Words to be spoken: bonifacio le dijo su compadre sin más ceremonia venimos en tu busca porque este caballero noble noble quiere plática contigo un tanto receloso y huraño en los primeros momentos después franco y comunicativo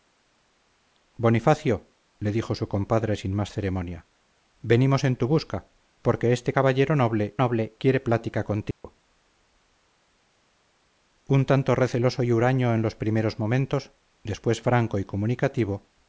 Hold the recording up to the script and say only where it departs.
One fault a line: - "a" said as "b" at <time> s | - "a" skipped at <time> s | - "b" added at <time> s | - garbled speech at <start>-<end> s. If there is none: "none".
none